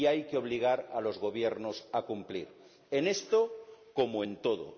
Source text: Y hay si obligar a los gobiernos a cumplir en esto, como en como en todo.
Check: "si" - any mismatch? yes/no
yes